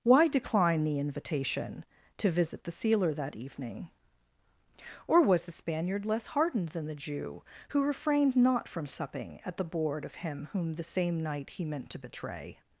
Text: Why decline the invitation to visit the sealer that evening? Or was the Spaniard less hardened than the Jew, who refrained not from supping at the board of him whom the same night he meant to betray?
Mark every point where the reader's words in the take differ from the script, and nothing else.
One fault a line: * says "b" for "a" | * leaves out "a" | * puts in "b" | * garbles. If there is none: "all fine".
all fine